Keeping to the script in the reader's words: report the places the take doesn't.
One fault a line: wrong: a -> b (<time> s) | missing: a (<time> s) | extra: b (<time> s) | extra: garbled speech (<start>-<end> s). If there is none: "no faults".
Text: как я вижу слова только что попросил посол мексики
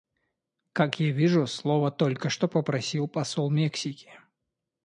no faults